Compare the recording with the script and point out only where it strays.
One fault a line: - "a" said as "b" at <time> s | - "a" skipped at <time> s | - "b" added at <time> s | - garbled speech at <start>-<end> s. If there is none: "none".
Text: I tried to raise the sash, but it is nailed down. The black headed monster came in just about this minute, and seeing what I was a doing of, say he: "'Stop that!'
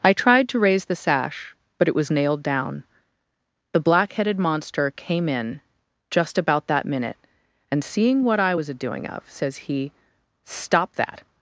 - "is" said as "was" at 1.9 s
- "this" said as "that" at 6.7 s
- "say" said as "says" at 9.3 s